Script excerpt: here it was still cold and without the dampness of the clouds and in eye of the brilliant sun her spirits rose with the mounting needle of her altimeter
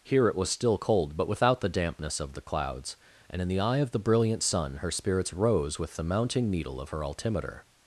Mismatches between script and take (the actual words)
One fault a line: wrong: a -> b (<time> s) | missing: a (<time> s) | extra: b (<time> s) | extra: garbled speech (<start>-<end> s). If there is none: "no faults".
wrong: and -> but (1.2 s)
extra: the (3.5 s)